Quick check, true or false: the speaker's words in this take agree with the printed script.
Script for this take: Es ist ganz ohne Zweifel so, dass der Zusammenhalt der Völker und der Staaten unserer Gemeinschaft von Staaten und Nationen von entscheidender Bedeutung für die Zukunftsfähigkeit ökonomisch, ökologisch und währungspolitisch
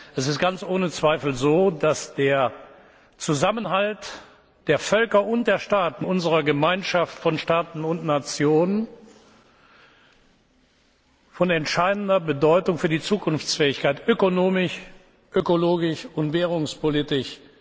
true